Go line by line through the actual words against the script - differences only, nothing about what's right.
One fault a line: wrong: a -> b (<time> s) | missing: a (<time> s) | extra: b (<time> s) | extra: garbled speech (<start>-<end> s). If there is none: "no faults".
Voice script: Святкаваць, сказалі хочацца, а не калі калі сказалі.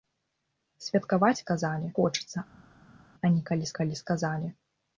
no faults